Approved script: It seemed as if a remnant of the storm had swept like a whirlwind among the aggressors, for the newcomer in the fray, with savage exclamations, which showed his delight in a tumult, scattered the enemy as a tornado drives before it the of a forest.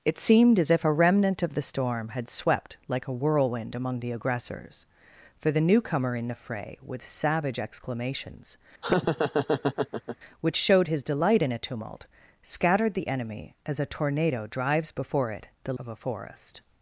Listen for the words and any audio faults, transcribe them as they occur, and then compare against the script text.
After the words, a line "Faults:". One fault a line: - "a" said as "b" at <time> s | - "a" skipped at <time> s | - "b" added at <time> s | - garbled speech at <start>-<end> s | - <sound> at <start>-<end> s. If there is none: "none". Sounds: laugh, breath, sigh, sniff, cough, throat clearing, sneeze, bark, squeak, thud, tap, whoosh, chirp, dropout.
It seemed as if a remnant of the storm had swept like a whirlwind among the aggressors, for the newcomer in the fray, with savage exclamations, which showed his delight in a tumult, scattered the enemy as a tornado drives before it the of a forest.
Faults:
- laugh at 8.8-10.2 s